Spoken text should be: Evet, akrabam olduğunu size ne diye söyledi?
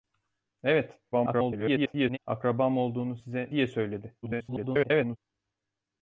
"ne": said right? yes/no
no